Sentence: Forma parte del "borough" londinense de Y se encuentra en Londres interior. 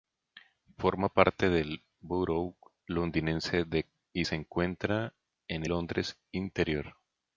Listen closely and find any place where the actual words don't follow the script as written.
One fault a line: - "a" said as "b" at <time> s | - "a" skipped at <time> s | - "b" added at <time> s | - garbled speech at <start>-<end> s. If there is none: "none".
none